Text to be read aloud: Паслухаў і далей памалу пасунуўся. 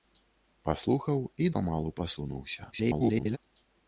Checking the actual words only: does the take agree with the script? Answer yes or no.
no